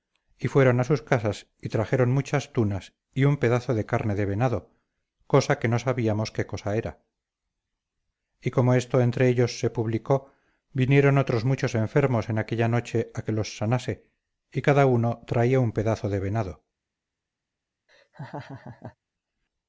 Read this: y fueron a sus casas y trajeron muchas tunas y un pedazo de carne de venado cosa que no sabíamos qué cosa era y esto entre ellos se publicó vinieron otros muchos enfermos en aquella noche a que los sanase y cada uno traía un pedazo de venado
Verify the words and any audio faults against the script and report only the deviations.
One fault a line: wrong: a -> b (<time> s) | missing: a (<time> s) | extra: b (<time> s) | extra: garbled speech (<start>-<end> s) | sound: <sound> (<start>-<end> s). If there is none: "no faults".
extra: como (8.5 s)
sound: laugh (17.9-19.0 s)